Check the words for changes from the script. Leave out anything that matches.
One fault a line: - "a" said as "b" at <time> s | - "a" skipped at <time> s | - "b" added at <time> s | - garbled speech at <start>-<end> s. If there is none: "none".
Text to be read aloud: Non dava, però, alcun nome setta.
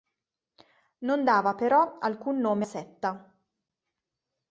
none